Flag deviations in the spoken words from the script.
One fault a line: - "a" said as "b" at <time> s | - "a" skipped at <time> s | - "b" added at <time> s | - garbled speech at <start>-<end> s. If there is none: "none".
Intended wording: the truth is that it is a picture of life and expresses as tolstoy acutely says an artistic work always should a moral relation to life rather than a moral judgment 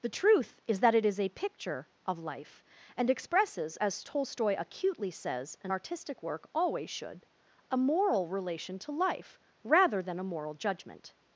none